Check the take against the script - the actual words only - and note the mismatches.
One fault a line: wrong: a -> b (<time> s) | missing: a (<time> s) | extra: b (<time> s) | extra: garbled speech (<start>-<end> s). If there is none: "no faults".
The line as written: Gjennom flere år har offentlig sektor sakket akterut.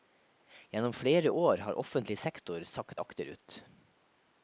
no faults